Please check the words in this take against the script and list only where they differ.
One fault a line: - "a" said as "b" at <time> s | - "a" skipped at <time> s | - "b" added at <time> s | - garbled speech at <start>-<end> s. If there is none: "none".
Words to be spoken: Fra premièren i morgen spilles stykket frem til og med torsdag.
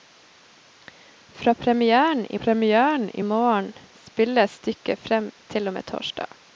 - "premièren i" added at 2.3 s